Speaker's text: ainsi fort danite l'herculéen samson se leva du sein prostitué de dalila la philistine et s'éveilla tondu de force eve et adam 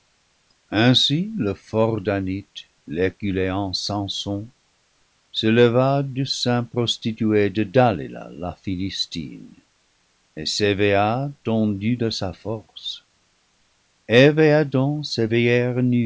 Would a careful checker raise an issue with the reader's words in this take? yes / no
yes